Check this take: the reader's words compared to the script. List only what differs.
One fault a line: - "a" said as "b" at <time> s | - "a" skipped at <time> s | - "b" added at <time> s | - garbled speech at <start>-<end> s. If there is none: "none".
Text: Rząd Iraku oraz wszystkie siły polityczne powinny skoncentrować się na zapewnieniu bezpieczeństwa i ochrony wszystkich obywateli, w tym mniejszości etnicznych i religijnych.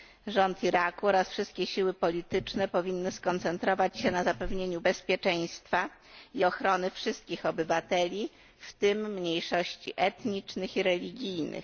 none